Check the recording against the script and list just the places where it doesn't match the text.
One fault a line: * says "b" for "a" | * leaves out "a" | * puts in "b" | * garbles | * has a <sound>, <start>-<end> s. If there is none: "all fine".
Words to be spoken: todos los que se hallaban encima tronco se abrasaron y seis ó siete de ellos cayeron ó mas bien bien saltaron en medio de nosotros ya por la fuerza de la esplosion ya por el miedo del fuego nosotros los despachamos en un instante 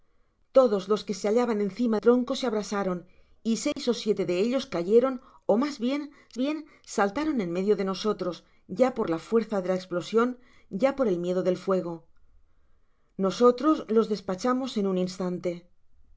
* has a dropout, 3.7-3.8 s